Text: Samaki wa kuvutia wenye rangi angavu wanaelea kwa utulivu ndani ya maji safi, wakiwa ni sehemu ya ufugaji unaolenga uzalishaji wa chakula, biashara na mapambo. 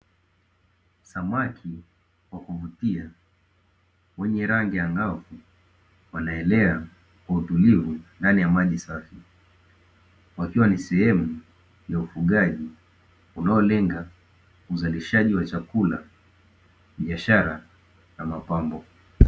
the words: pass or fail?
pass